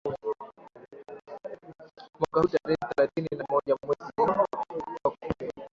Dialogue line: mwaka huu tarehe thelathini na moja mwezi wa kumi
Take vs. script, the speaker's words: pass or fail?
pass